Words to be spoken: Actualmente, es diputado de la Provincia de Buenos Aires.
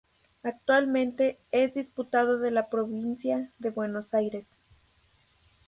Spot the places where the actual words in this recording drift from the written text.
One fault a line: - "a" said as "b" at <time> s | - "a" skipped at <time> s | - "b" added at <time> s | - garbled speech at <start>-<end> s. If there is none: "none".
none